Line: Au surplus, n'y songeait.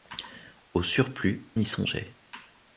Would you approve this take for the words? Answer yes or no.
yes